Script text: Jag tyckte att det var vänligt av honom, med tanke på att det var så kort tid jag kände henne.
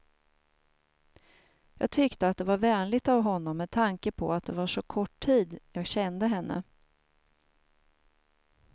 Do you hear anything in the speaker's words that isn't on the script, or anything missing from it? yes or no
no